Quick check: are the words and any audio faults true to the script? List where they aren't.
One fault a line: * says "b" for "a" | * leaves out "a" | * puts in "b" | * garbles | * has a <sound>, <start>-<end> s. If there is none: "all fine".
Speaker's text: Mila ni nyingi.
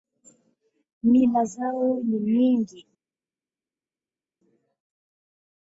* puts in "zao"